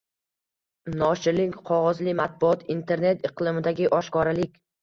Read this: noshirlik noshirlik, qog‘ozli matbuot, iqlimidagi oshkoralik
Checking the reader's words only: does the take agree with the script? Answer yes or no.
no